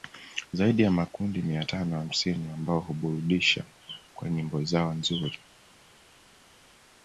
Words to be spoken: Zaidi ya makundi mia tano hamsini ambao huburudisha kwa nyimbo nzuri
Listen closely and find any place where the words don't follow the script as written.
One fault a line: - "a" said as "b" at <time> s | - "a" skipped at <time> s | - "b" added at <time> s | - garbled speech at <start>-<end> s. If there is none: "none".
- "zao" added at 4.6 s